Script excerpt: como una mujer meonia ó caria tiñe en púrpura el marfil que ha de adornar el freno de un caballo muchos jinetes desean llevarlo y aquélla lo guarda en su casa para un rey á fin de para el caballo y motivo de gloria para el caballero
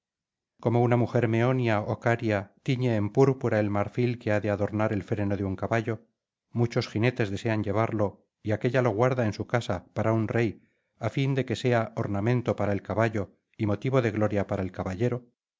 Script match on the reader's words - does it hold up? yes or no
no